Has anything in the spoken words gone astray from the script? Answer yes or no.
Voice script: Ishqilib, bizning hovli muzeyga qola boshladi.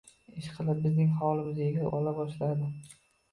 no